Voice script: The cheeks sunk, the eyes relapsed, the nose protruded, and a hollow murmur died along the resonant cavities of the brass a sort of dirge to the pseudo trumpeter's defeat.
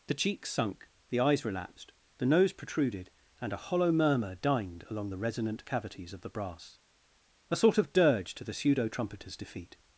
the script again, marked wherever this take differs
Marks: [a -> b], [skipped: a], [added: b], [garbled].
The cheeks sunk, the eyes relapsed, the nose protruded, and a hollow murmur [died -> dined] along the resonant cavities of the brass a sort of dirge to the pseudo trumpeter's defeat.